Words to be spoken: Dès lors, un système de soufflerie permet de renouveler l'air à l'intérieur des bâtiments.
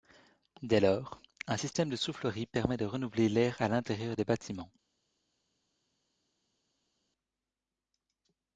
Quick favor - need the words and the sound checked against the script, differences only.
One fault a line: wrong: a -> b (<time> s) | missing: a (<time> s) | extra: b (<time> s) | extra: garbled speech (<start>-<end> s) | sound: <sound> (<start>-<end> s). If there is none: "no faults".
no faults